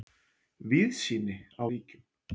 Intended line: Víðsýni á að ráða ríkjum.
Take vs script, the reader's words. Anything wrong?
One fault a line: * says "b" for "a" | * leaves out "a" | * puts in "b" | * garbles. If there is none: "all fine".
* leaves out "að ráða"